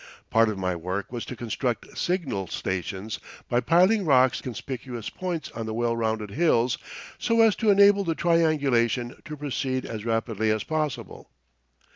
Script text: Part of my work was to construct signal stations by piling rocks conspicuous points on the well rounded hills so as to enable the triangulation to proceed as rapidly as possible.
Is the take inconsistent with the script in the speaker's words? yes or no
no